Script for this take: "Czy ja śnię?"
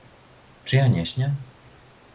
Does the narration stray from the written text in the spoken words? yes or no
yes